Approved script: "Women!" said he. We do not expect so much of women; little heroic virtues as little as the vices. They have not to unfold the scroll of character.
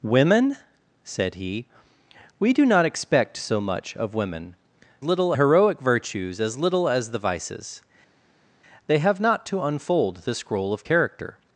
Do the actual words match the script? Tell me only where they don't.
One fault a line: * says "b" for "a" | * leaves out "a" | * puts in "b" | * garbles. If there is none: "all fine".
all fine